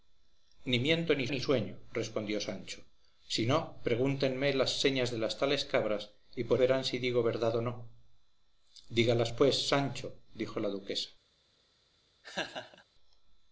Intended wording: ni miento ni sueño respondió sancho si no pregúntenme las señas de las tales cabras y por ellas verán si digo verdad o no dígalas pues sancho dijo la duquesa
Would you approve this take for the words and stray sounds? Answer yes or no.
no